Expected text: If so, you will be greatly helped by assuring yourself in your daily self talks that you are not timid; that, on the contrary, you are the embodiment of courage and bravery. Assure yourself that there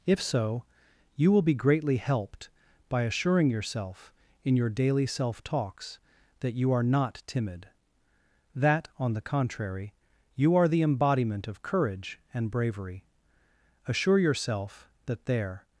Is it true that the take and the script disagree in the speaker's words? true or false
false